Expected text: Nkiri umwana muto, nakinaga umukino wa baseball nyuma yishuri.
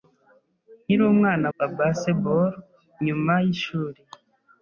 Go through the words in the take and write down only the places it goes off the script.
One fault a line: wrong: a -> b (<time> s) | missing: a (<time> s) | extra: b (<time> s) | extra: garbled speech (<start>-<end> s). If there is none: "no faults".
missing: muto nakinaga umukino (1.5 s)